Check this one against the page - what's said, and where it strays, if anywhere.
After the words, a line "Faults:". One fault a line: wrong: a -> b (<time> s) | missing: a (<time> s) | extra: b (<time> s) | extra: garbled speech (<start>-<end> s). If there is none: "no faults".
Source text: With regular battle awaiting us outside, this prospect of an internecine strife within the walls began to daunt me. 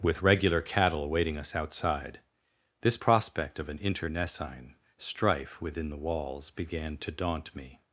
With regular cattle awaiting us outside, this prospect of an internecine strife within the walls began to daunt me.
Faults:
wrong: battle -> cattle (0.6 s)